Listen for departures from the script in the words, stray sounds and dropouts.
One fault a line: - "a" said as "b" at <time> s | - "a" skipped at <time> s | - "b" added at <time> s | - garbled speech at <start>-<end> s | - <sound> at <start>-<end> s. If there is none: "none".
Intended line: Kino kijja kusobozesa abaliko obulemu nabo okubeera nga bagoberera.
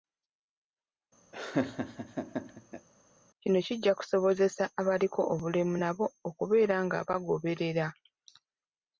- laugh at 1.3-2.9 s